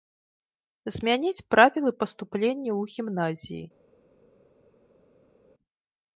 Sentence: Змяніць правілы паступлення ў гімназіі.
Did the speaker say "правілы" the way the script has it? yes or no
yes